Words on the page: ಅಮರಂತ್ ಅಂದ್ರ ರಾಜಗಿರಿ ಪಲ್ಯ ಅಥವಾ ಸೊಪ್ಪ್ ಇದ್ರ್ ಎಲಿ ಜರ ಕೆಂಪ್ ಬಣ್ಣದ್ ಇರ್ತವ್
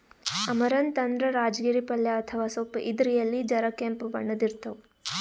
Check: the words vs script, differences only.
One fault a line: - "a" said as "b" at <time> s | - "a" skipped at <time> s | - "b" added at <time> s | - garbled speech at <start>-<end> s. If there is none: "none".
none